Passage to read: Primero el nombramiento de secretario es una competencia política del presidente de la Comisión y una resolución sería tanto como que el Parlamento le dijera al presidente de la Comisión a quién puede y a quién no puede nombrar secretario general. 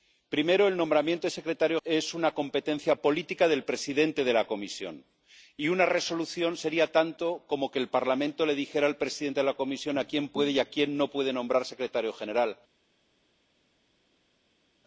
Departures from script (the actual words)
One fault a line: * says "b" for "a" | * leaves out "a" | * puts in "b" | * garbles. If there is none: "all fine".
all fine